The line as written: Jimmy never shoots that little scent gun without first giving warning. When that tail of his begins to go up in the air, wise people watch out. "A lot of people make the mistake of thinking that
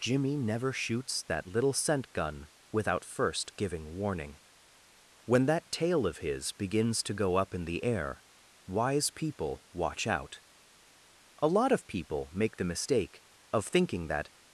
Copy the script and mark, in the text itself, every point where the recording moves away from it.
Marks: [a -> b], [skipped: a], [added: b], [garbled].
Jimmy never shoots that little scent gun without first giving warning. When that tail of his begins to go up in the air, wise people watch out. "A lot of people make the mistake of thinking that